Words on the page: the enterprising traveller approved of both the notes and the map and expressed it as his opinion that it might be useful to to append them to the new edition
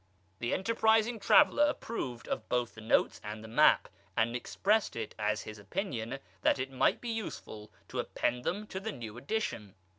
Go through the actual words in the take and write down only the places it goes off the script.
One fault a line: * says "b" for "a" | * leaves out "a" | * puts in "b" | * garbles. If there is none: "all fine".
* leaves out "to"